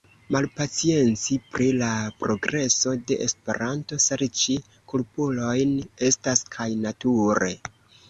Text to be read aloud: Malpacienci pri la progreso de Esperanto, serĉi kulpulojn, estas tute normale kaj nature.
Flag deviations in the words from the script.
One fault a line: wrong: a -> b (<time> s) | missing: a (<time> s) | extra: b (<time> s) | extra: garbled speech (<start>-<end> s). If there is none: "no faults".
missing: tute normale (6.5 s)